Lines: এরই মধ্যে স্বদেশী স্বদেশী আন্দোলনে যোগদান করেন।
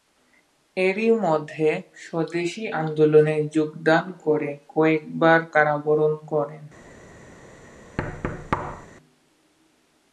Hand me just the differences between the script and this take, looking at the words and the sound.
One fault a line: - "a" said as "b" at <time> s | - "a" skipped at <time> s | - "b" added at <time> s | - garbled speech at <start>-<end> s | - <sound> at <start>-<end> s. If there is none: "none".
- "স্বদেশী" skipped at 2.6 s
- "করে কয়েকবার কারাবরণ" added at 4.2 s
- thud at 8.0-8.9 s